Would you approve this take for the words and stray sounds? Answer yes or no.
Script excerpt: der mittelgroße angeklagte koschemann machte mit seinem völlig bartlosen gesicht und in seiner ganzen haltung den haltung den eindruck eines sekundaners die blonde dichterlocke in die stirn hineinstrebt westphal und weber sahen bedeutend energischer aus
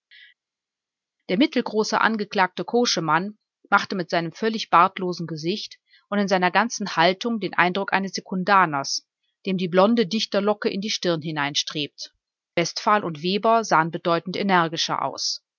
no